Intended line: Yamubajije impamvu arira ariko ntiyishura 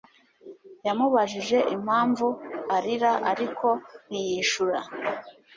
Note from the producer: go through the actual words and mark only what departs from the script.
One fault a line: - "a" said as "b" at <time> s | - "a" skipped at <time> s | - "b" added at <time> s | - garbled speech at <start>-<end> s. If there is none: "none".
none